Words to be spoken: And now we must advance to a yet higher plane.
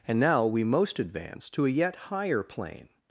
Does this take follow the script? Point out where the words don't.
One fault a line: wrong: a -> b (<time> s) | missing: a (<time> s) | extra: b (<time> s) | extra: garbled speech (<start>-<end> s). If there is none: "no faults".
wrong: must -> most (0.6 s)